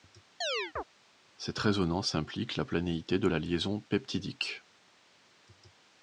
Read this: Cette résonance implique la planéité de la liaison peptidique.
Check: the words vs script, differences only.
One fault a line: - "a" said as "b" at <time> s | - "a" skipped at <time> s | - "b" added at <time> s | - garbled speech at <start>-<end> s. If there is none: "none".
none